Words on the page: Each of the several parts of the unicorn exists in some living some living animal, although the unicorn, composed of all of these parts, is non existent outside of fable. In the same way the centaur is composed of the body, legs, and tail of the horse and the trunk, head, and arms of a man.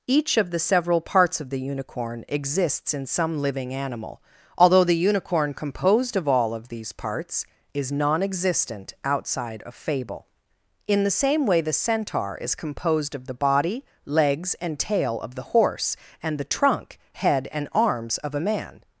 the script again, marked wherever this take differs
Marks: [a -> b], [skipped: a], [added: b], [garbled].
Each of the several parts of the unicorn exists in some living [skipped: some living] animal, although the unicorn, composed of all of these parts, is non existent outside of fable. In the same way the centaur is composed of the body, legs, and tail of the horse and the trunk, head, and arms of a man.